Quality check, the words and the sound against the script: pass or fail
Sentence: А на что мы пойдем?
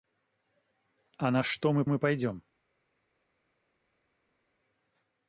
fail